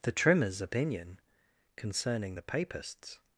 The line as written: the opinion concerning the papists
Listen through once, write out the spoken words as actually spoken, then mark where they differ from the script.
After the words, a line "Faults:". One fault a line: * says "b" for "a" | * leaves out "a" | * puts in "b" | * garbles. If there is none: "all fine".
the trimmer's opinion concerning the papists
Faults:
* puts in "trimmer's"